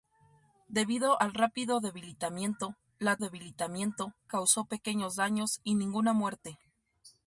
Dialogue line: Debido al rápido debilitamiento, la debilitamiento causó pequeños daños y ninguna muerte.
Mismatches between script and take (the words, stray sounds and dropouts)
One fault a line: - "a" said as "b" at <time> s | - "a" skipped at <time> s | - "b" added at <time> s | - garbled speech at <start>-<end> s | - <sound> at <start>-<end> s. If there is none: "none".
none